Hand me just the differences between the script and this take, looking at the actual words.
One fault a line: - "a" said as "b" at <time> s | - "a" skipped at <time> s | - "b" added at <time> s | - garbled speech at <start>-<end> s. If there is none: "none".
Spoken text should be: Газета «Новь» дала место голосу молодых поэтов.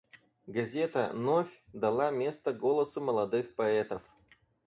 none